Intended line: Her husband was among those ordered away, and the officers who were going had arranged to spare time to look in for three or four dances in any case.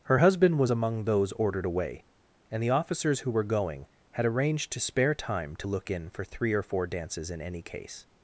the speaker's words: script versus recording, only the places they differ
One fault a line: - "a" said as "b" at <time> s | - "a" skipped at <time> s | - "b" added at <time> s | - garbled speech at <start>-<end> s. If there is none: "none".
none